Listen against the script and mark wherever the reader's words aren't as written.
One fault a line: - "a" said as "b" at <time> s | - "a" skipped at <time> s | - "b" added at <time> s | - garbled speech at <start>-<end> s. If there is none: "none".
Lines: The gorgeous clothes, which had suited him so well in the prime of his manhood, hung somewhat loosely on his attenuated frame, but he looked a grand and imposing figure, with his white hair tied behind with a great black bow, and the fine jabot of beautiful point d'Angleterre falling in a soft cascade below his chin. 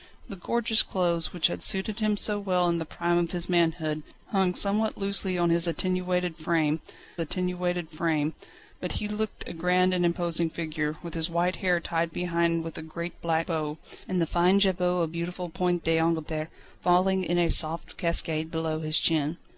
- "attenuated frame" added at 7.2 s